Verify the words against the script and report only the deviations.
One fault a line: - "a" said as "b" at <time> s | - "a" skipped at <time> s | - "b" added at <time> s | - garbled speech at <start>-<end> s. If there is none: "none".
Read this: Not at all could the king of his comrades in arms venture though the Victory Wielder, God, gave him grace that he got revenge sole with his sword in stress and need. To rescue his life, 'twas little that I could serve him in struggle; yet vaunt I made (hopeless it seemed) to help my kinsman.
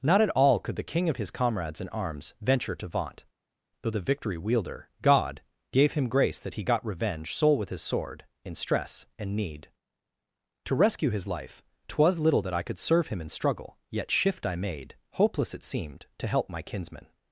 - "to vaunt" added at 2.8 s
- "vaunt" said as "shift" at 14.1 s